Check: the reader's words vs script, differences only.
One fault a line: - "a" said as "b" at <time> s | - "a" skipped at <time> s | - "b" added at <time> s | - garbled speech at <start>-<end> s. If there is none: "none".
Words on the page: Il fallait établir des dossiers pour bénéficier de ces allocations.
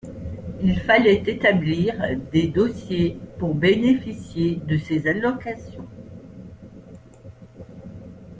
none